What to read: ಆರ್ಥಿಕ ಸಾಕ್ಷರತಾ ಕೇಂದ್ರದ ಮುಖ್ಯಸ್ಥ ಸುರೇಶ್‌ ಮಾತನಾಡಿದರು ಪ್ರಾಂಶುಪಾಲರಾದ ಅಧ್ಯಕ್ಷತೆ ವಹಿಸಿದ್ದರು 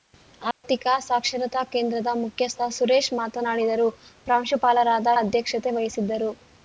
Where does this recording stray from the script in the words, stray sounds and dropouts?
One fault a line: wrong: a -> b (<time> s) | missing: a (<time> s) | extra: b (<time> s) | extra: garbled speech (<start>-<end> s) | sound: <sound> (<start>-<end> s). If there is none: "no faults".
sound: dropout (0.5-0.6 s)